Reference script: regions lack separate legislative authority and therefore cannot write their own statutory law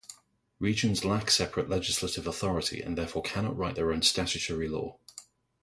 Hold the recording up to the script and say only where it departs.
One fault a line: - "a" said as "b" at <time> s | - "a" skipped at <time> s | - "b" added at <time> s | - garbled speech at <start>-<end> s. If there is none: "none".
none